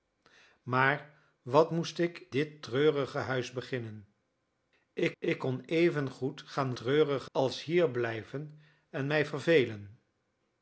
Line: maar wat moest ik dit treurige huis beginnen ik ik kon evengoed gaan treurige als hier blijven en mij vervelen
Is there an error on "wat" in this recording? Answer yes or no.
no